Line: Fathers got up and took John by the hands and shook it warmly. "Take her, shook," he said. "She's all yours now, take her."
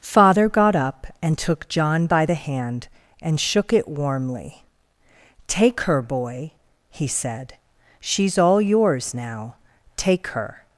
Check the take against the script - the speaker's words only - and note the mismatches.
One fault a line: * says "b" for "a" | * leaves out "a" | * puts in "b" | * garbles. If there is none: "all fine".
* says "Father" for "Fathers"
* says "hand" for "hands"
* says "boy" for "shook"